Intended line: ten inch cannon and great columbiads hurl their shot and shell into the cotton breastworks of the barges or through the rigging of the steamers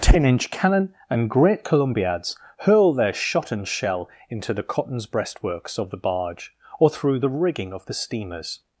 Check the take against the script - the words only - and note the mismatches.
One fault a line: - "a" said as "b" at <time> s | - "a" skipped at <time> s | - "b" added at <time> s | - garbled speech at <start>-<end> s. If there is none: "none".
- "cotton" said as "cottons" at 4.6 s
- "barges" said as "barge" at 6.0 s